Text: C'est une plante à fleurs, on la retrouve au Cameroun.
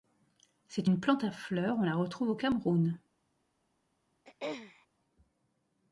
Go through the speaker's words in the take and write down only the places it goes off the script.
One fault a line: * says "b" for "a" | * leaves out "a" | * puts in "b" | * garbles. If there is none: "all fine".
all fine